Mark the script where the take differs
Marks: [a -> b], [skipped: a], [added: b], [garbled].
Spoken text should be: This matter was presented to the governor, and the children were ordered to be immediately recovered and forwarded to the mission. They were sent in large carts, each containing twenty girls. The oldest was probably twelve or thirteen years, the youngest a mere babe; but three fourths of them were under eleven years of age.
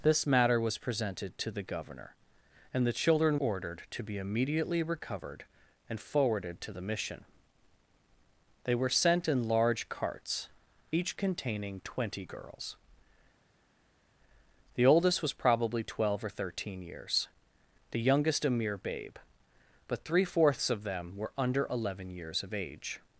This matter was presented to the governor, and the children [skipped: were] ordered to be immediately recovered and forwarded to the mission. They were sent in large carts, each containing twenty girls. The oldest was probably twelve or thirteen years, the youngest a mere babe; but three fourths of them were under eleven years of age.